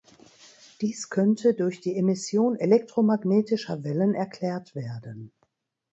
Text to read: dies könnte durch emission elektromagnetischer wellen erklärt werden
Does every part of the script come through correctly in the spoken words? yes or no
no